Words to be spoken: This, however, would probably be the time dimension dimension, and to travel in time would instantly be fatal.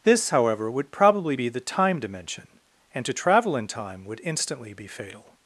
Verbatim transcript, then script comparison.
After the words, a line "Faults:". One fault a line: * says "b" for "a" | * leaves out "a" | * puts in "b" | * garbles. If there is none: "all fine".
This, however, would probably be the time dimension, and to travel in time would instantly be fatal.
Faults:
* leaves out "dimension"